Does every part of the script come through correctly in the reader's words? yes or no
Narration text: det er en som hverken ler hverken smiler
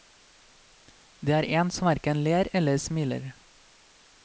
no